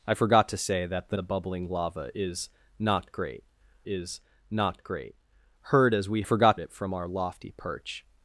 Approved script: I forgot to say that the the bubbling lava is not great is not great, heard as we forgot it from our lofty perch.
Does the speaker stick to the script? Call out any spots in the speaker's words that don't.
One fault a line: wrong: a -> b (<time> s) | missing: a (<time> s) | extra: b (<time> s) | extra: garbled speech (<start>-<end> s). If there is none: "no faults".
no faults